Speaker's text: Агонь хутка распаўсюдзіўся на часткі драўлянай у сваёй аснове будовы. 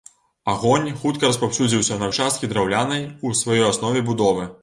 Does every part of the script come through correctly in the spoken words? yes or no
yes